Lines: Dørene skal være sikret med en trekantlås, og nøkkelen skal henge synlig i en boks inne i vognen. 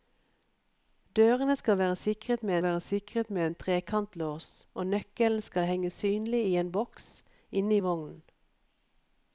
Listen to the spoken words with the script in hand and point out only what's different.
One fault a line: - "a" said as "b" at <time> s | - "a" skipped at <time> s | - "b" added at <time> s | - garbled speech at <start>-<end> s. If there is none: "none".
- "være sikret med" added at 2.6 s